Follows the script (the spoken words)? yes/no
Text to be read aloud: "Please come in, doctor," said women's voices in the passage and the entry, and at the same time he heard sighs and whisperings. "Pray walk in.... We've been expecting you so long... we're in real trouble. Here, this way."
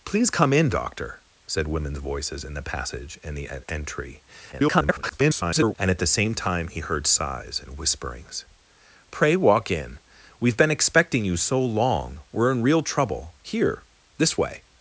no